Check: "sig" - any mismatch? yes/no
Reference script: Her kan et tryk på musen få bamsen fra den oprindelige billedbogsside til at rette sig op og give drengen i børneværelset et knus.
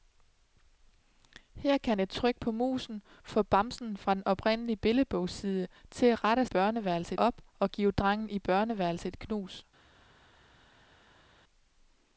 yes